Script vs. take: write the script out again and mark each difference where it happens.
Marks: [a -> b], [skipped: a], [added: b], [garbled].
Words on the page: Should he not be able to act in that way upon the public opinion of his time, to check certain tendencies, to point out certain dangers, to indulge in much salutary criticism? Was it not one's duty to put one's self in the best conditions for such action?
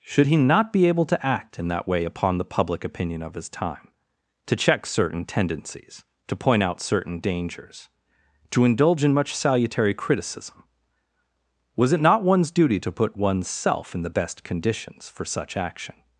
Should he not be able to act in that way upon the public opinion of his time, to check certain tendencies, to point out certain dangers, to indulge in much salutary criticism? Was it not one's duty to put one's self in the best conditions for such action?